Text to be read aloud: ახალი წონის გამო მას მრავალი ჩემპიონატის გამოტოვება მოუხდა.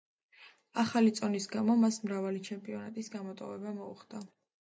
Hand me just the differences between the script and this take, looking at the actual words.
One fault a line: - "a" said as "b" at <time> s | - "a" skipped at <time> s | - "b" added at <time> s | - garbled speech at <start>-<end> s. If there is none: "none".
none